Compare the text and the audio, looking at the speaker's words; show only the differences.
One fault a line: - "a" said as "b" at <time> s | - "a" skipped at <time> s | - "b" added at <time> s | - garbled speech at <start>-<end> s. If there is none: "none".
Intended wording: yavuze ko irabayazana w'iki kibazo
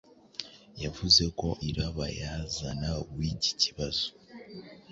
none